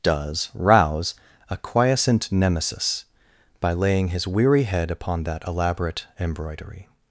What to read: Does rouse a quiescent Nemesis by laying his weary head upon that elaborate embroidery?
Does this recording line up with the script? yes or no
yes